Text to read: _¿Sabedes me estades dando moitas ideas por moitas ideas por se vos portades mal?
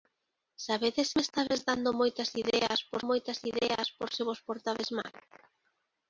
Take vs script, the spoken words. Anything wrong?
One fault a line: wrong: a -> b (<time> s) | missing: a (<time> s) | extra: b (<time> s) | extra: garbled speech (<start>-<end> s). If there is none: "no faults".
no faults